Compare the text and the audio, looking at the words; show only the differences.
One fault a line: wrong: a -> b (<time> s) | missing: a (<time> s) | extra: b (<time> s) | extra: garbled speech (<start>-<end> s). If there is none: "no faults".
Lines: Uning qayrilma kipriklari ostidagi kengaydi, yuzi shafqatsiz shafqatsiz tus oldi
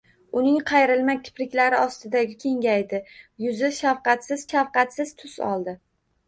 no faults